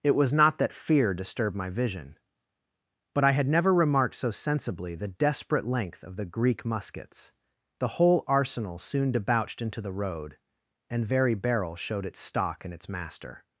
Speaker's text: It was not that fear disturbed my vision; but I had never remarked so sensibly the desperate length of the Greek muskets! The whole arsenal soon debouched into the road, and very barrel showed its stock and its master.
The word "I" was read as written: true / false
true